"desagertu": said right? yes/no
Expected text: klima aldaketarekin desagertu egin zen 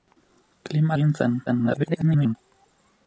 no